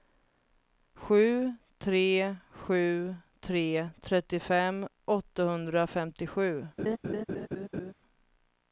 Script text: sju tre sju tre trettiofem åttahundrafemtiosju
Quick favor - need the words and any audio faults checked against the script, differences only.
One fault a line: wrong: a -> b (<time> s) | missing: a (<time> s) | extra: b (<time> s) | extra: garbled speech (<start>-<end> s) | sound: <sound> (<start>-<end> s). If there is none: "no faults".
sound: laugh (6.8-7.9 s)